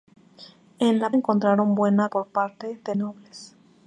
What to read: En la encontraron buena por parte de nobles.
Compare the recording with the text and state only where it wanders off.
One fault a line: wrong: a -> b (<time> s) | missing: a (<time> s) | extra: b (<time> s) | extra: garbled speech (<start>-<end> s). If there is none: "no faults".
no faults